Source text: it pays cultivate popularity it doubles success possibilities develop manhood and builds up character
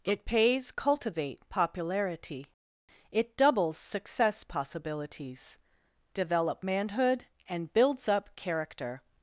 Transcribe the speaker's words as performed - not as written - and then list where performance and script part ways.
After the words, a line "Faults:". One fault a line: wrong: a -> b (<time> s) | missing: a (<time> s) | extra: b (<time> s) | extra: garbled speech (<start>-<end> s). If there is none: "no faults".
it pays cultivate popularity it doubles success possibilities develop manhood and builds up character
Faults:
no faults